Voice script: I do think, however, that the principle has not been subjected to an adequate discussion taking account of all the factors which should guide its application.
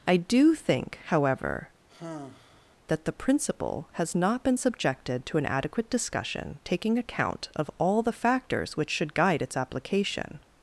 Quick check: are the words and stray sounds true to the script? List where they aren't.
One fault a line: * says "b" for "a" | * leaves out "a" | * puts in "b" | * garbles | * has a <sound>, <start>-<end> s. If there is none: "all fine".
* has a sigh, 1.9-2.8 s